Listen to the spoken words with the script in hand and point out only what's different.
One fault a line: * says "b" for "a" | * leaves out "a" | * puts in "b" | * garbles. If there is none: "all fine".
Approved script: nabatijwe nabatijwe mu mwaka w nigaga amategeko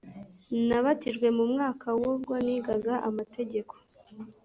* leaves out "nabatijwe"
* puts in "ubwo"